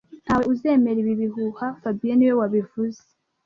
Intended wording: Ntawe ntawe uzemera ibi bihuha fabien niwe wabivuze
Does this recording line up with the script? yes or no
no